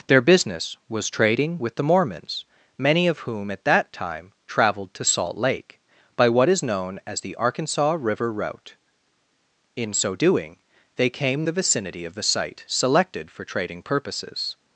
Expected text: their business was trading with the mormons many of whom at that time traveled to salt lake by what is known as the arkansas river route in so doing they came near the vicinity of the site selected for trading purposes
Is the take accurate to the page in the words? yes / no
no